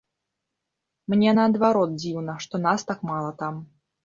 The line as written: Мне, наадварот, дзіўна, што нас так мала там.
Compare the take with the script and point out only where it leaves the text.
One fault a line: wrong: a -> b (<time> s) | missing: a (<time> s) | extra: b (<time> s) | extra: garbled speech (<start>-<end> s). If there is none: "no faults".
no faults